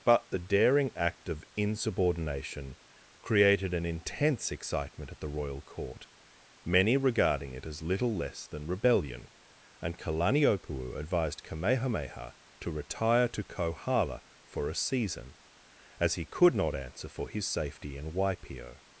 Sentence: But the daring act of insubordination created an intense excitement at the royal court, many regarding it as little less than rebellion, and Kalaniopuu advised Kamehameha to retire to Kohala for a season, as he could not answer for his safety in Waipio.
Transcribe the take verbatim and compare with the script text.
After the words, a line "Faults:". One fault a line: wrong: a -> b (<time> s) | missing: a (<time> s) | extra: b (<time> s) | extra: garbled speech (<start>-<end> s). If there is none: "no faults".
But the daring act of insubordination created an intense excitement at the royal court, many regarding it as little less than rebellion, and Kalaniopuu advised Kamehameha to retire to Kohala for a season, as he could not answer for his safety in Waipio.
Faults:
no faults